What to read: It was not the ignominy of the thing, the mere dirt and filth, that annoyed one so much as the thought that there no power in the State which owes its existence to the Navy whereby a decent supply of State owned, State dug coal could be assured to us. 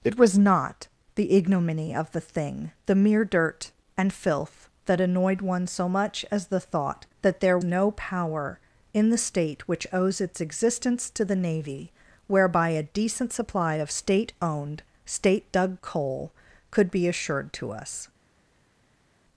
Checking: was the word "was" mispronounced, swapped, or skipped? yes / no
no